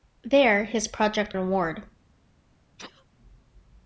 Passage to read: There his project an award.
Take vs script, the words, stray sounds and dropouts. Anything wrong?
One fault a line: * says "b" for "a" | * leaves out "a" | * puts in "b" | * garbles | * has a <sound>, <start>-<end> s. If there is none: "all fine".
* has a sneeze, 2.8-3.0 s